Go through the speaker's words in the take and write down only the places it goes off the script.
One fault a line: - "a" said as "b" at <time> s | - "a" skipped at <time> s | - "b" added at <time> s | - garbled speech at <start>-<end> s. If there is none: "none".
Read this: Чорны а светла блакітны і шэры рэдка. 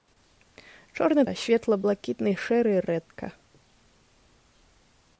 none